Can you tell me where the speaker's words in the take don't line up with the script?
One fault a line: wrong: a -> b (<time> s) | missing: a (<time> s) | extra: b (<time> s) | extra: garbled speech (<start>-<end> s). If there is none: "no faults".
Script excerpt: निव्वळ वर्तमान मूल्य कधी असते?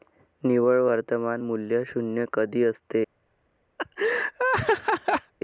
extra: शून्य (1.9 s)